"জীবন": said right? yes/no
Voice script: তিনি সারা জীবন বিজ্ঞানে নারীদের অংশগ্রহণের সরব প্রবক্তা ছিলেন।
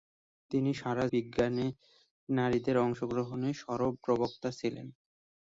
no